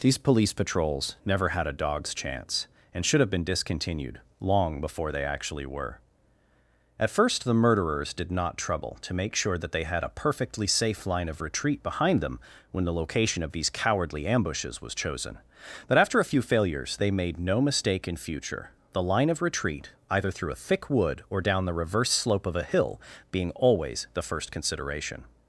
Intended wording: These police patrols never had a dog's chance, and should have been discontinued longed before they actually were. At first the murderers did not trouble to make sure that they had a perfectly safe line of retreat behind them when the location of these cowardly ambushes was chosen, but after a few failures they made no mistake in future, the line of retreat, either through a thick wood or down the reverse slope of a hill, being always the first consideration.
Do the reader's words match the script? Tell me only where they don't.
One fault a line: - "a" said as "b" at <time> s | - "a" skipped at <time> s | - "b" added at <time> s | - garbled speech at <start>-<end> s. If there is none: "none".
- "longed" said as "long" at 4.4 s